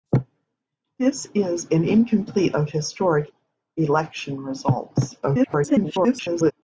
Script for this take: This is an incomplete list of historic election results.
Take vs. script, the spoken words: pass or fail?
fail